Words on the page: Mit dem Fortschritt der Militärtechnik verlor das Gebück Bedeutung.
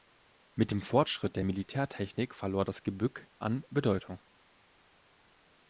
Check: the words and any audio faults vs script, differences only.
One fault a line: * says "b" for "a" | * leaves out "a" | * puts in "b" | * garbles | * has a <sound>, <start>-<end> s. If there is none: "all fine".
* puts in "an"